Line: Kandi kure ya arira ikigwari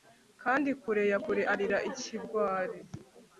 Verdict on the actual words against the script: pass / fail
fail